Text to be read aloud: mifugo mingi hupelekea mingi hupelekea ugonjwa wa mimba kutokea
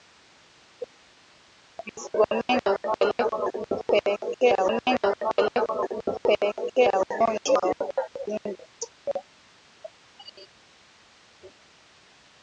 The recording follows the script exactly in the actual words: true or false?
true